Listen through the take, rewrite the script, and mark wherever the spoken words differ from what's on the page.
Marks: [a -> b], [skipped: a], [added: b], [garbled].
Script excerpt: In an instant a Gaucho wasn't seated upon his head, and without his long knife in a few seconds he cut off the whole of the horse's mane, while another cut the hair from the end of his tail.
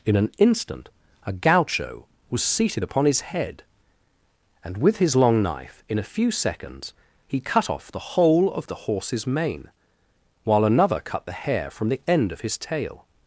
In an instant a Gaucho [wasn't -> was] seated upon his head, and [without -> with] his long knife in a few seconds he cut off the whole of the horse's mane, while another cut the hair from the end of his tail.